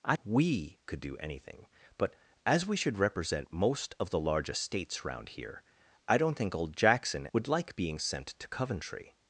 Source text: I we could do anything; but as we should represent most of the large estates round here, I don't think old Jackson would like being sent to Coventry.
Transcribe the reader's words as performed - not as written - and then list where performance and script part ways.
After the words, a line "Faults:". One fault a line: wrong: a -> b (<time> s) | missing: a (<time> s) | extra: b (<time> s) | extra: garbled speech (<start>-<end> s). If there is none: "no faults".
I we could do anything; but as we should represent most of the large estates round here, I don't think old Jackson would like being sent to Coventry.
Faults:
no faults